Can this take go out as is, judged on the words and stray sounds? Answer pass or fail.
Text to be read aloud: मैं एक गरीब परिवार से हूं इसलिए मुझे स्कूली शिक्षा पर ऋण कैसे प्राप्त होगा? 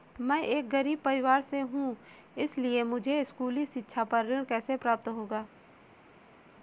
pass